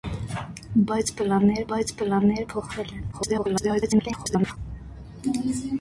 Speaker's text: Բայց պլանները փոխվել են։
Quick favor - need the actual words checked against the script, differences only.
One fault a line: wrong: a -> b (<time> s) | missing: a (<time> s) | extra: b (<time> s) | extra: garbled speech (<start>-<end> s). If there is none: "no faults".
extra: բայց պլանները (1.7 s)
extra: garbled speech (3.1-4.6 s)